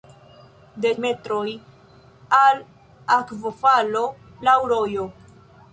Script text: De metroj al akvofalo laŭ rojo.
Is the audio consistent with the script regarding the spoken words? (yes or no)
yes